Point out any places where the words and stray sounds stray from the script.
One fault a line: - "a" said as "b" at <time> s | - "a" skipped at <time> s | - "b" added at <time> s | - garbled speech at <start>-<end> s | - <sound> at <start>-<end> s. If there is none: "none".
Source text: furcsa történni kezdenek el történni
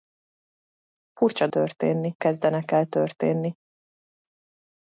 none